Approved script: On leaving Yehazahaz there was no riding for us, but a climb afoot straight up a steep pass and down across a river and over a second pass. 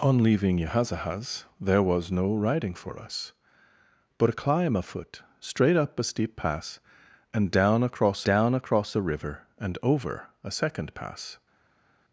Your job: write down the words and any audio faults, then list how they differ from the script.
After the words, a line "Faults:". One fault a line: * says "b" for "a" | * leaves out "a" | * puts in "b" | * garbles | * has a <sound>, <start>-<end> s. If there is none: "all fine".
On leaving Yehazahaz there was no riding for us, but a climb afoot straight up a steep pass and down across down across a river and over a second pass.
Faults:
* puts in "down across"